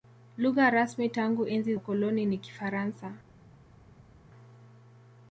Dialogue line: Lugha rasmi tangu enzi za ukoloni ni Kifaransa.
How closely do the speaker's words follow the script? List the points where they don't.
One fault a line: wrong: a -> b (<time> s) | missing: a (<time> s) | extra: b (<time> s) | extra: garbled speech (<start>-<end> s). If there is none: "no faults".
missing: za (1.8 s)